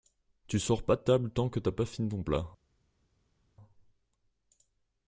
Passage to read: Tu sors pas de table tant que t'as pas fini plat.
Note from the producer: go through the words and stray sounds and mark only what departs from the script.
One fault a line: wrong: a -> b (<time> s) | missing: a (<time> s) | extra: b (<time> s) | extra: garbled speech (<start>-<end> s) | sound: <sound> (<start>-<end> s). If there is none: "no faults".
extra: ton (2.1 s)